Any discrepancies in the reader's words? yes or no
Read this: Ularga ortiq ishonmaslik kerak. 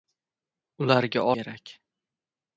yes